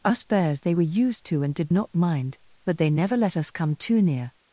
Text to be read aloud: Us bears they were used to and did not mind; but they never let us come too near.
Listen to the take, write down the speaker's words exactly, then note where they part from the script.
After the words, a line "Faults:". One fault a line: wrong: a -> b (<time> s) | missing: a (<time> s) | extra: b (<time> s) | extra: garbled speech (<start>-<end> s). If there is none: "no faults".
Us bears they were used to and did not mind; but they never let us come too near.
Faults:
no faults